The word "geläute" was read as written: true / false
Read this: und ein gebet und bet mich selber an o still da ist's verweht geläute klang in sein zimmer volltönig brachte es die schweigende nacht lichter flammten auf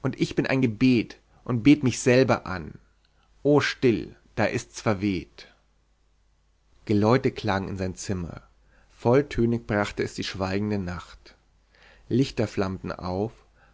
true